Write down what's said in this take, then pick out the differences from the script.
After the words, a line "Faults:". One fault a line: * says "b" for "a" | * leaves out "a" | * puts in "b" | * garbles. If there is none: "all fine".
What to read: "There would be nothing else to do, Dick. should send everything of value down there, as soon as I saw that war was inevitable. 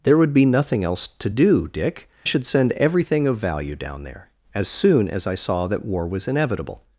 "There would be nothing else to do, Dick. should send everything of value down there, as soon as I saw that war was inevitable.
Faults:
all fine